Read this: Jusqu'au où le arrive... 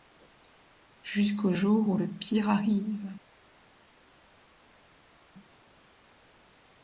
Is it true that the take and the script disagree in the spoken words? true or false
true